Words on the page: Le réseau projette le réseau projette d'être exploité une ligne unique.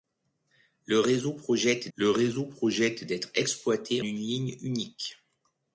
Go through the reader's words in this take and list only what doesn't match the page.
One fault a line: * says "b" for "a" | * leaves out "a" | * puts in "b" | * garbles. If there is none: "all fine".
all fine